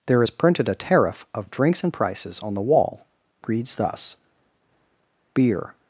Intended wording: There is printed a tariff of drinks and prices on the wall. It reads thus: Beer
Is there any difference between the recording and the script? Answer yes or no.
yes